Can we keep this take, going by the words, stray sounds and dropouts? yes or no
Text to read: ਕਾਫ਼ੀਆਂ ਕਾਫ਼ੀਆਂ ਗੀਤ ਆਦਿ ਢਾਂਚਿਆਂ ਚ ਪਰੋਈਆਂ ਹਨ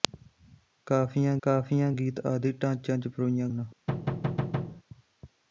no